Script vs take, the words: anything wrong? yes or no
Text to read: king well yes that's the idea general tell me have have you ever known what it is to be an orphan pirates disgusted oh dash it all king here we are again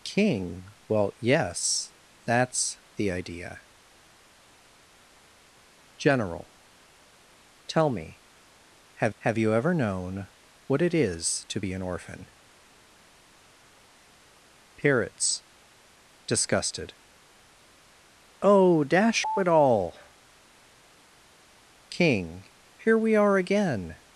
no